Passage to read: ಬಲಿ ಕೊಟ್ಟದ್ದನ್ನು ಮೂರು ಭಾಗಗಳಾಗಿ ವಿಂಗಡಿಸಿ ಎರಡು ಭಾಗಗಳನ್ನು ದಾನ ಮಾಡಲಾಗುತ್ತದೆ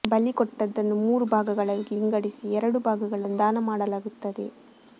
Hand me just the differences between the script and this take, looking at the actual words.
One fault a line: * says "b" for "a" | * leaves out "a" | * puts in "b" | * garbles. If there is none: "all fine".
all fine